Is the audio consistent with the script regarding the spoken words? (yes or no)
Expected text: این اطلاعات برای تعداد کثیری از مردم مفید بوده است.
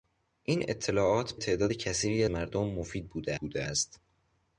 no